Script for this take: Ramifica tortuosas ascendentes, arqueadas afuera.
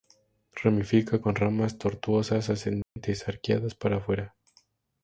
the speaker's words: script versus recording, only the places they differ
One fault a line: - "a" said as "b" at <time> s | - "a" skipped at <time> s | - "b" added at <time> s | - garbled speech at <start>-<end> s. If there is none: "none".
- "con ramas" added at 1.2 s
- "para" added at 3.7 s